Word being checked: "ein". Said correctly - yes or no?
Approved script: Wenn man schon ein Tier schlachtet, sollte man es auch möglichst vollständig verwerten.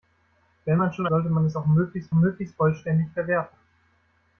no